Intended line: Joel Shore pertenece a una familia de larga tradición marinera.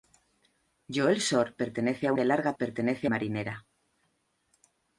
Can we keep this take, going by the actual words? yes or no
no